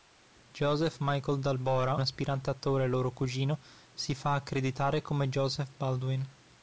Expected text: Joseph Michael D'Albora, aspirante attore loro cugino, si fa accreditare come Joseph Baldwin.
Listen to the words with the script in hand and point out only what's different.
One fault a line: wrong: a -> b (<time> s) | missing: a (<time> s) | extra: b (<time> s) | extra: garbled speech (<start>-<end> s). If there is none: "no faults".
no faults